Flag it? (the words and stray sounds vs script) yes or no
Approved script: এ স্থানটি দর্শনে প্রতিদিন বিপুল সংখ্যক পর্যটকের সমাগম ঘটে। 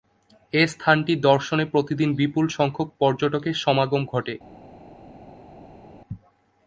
no